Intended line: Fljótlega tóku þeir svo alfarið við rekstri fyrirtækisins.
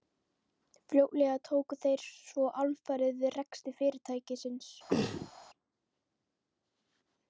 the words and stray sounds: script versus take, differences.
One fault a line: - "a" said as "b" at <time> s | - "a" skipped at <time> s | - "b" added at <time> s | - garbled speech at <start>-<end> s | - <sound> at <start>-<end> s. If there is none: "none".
- throat clearing at 4.9-5.3 s